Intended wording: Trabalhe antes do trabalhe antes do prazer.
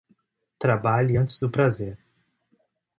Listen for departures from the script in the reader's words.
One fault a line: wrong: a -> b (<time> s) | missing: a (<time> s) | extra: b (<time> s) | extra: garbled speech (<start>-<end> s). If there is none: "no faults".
missing: trabalhe antes do (1.5 s)